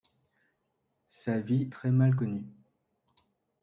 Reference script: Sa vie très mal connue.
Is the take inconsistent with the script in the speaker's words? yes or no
no